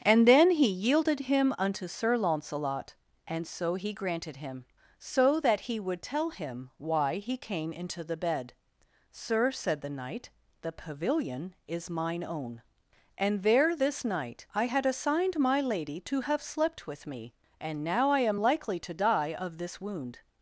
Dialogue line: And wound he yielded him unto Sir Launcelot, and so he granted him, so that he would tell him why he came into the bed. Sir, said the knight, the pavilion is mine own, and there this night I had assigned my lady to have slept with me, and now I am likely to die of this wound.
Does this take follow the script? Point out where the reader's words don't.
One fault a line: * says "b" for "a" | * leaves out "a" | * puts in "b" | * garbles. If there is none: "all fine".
* says "then" for "wound"